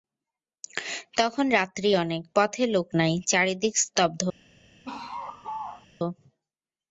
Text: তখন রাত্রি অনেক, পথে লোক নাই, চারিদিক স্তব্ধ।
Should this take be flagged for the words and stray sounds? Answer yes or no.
yes